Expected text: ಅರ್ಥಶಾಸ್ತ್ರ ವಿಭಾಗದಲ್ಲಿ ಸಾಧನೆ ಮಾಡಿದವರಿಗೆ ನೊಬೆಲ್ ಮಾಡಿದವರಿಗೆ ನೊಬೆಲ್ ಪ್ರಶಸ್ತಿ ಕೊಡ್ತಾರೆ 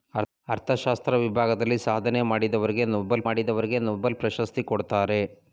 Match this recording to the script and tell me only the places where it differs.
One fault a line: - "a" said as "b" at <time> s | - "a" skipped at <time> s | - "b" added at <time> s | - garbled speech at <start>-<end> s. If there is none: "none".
none